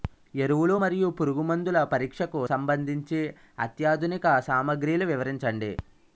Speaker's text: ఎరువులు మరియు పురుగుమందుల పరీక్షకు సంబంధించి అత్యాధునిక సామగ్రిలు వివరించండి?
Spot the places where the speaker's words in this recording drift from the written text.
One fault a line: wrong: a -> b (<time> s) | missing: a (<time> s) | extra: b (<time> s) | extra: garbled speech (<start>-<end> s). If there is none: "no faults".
no faults